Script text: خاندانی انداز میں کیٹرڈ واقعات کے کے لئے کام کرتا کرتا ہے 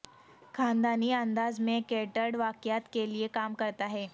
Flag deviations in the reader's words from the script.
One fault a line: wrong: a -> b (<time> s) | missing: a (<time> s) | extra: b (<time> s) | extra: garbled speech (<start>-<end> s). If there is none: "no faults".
missing: کے (3.1 s)
missing: کرتا (3.9 s)